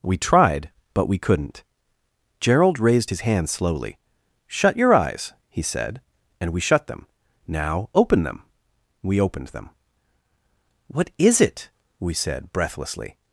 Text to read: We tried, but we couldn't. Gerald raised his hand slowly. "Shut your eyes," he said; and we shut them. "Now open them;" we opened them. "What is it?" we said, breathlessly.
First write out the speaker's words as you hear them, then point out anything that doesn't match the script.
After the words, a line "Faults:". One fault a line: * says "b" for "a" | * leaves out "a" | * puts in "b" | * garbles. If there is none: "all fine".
We tried, but we couldn't. Gerald raised his hand slowly. "Shut your eyes," he said; and we shut them. "Now open them;" we opened them. "What is it?" we said, breathlessly.
Faults:
all fine